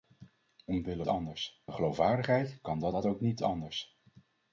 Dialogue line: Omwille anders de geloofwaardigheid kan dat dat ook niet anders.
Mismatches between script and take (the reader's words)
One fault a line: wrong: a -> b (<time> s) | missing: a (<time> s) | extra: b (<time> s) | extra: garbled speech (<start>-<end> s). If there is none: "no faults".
no faults